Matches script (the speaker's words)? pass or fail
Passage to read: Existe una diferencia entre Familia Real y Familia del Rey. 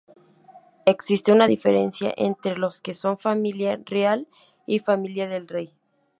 fail